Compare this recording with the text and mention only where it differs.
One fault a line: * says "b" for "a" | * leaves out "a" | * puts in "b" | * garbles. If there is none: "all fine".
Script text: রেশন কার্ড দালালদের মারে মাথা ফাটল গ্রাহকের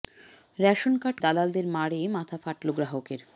all fine